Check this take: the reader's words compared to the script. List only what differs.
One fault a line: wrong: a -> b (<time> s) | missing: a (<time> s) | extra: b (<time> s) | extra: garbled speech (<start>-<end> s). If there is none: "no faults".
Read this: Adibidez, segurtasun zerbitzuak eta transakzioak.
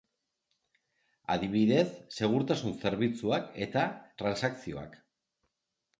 no faults